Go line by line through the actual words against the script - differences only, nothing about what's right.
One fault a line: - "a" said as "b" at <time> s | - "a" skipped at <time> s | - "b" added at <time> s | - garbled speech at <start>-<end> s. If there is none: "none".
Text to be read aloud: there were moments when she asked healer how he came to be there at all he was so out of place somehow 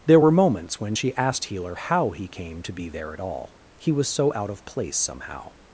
none